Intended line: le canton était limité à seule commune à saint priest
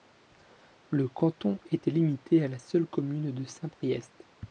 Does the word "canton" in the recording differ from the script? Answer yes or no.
no